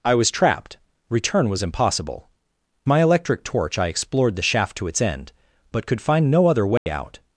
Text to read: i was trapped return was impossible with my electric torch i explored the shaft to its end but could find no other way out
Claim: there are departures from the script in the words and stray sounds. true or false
true